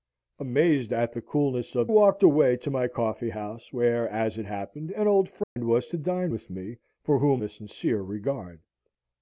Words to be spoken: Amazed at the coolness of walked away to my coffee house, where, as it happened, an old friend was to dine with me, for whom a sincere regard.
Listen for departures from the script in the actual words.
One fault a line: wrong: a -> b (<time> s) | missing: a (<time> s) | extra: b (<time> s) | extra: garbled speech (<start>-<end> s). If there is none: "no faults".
no faults